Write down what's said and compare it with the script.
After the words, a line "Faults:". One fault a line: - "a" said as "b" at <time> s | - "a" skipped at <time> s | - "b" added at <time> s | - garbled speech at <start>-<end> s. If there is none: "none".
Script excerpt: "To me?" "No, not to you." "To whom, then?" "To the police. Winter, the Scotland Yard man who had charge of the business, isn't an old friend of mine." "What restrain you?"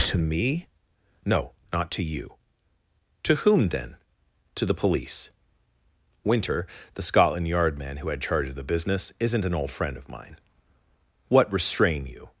"To me?" "No, not to you." "To whom, then?" "To the police. Winter, the Scotland Yard man who had charge of the business, isn't an old friend of mine." "What restrain you?"
Faults:
none